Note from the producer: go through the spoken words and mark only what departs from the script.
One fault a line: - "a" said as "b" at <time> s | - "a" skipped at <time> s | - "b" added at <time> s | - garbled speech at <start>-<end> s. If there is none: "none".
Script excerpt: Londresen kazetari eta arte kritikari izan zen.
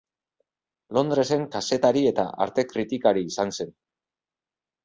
none